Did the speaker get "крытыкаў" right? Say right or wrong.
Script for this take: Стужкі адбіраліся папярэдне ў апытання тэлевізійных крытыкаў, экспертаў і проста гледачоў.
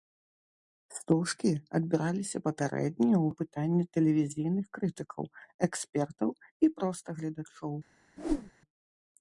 right